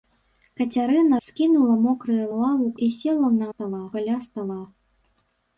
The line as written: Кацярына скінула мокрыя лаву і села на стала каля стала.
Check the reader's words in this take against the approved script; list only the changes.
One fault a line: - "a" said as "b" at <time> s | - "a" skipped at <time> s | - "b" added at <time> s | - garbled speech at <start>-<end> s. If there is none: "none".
none